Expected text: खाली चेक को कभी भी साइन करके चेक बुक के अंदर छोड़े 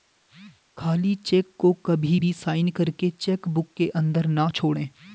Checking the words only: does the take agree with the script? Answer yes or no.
no